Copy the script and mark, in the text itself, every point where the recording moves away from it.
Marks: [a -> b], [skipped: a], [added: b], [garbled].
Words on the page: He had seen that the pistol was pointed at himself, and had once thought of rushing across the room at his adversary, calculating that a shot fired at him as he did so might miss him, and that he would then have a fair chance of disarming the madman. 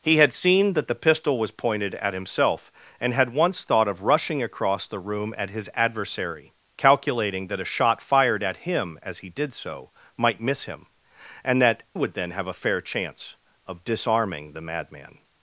He had seen that the pistol was pointed at himself, and had once thought of rushing across the room at his adversary, calculating that a shot fired at him as he did so might miss him, and that [skipped: he] would then have a fair chance of disarming the madman.